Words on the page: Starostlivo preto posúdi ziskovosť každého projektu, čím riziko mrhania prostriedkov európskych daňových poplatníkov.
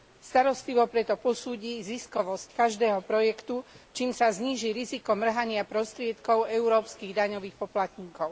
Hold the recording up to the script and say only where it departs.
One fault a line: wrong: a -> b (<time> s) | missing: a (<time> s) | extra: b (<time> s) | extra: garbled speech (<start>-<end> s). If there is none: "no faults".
extra: sa zníži (4.1 s)